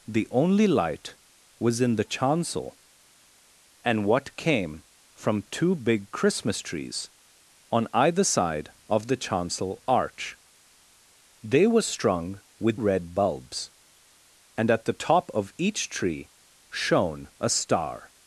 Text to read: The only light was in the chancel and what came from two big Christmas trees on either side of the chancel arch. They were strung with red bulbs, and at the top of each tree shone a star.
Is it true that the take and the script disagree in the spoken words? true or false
false